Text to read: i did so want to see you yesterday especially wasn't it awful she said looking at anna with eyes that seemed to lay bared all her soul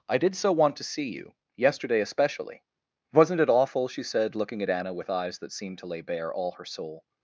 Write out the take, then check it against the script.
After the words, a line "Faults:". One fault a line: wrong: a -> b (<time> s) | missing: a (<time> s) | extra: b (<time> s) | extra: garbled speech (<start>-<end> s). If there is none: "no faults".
i did so want to see you yesterday especially wasn't it awful she said looking at anna with eyes that seemed to lay bare all her soul
Faults:
wrong: bared -> bare (6.0 s)